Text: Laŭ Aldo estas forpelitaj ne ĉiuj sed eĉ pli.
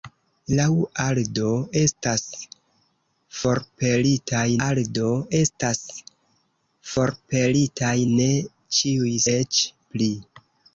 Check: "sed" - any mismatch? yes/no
yes